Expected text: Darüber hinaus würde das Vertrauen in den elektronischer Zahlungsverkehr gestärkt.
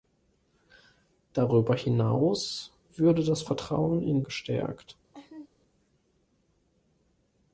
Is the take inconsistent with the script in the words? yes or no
yes